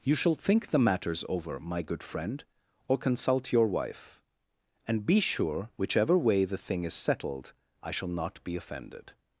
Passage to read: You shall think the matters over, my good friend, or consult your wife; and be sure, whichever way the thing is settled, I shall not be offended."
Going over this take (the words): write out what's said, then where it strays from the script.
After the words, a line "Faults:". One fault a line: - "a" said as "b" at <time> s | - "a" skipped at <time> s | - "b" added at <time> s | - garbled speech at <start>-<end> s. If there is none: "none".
You shall think the matters over, my good friend, or consult your wife; and be sure, whichever way the thing is settled, I shall not be offended."
Faults:
none